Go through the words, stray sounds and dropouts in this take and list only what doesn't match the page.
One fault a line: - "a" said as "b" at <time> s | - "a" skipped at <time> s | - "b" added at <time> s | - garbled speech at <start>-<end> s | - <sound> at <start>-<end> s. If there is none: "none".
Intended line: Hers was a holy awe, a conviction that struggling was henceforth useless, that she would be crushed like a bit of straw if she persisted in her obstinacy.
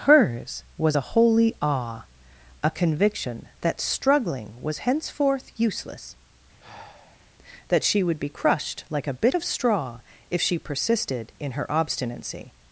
- sigh at 6.6-7.3 s